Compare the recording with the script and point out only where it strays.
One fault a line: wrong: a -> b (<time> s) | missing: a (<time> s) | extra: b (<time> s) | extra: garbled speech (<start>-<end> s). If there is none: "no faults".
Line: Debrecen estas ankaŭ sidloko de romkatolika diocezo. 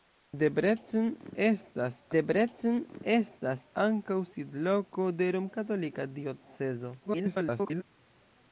extra: debrecen estas (2.2 s)
extra: garbled speech (7.0-7.8 s)